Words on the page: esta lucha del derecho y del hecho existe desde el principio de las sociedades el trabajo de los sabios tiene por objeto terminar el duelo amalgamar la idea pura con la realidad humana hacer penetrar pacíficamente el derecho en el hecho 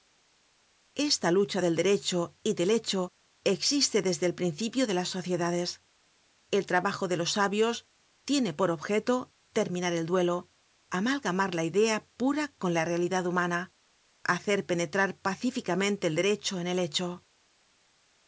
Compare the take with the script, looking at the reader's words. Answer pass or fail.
pass